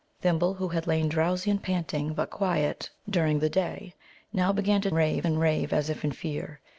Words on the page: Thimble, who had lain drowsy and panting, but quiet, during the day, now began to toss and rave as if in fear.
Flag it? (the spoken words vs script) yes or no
yes